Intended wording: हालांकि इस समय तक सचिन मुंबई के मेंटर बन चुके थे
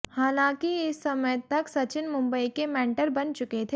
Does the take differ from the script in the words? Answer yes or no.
no